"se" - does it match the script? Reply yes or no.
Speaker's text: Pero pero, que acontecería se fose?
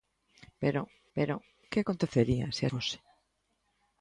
yes